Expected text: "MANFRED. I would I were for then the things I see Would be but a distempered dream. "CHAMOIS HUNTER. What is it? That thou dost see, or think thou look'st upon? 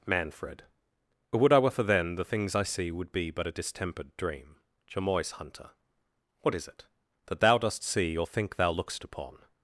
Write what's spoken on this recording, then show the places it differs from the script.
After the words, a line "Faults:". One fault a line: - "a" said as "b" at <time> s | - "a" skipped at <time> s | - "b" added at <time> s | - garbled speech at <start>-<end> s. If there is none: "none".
"MANFRED. would I were for then the things I see Would be but a distempered dream. "CHAMOIS HUNTER. What is it? That thou dost see, or think thou look'st upon?
Faults:
- "I" skipped at 0.6 s